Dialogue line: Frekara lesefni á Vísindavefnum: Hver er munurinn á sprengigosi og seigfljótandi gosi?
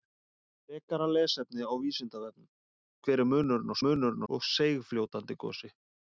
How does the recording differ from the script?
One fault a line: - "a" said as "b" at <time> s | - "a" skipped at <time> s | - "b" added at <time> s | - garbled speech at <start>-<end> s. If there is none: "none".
- "sprengigosi" said as "munurinn" at 3.9 s